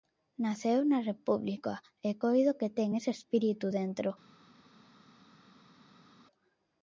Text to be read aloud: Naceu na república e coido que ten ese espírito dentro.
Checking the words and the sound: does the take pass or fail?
pass